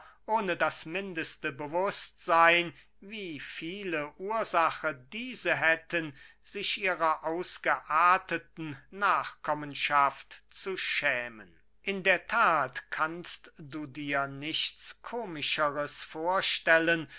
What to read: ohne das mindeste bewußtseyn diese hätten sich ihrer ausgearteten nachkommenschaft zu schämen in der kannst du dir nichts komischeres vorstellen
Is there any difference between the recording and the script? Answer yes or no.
yes